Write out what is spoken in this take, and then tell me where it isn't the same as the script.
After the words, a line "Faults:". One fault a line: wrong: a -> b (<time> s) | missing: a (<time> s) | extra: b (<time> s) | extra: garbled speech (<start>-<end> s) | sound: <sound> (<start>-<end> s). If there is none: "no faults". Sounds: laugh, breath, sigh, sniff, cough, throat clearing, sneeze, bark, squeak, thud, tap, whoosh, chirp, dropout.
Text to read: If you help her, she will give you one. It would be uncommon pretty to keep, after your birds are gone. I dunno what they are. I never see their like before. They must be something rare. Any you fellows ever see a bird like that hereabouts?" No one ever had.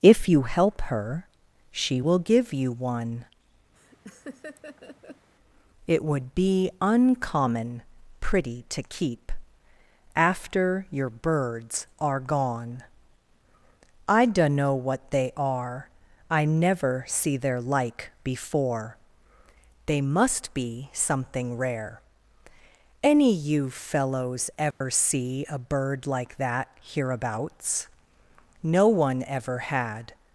If you help her, she will give you one. It would be uncommon pretty to keep, after your birds are gone. I dunno what they are. I never see their like before. They must be something rare. Any you fellows ever see a bird like that hereabouts?" No one ever had.
Faults:
sound: laugh (3.8-5.3 s)
sound: dropout (24.7-24.8 s)